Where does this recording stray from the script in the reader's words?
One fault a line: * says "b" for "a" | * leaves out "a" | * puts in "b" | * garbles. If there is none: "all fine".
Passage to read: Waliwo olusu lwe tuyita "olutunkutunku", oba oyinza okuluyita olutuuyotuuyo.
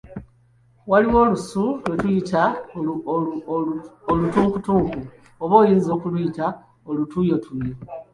all fine